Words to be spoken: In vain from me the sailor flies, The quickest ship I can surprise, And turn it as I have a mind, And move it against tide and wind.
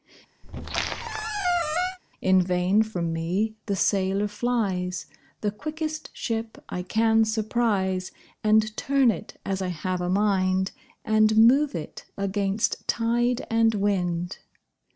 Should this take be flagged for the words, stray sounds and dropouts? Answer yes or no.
yes